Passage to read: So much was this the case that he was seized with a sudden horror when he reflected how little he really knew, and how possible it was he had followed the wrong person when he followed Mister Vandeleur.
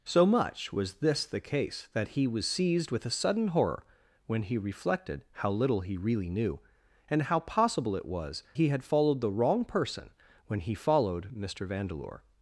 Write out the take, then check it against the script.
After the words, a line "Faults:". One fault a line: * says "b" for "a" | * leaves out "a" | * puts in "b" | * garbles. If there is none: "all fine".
So much was this the case that he was seized with a sudden horror when he reflected how little he really knew, and how possible it was he had followed the wrong person when he followed Mister Vandeleur.
Faults:
all fine